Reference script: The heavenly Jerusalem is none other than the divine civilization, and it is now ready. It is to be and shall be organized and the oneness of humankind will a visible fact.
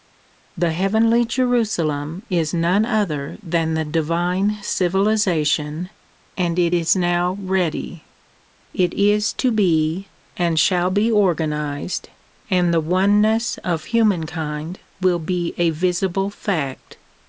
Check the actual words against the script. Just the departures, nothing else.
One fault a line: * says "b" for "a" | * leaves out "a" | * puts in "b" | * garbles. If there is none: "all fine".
* puts in "be"